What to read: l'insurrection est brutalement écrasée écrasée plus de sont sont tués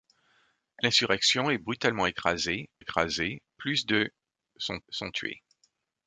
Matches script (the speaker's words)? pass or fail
pass